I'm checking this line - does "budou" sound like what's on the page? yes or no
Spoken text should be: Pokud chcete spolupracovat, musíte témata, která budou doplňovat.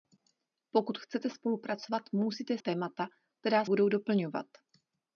yes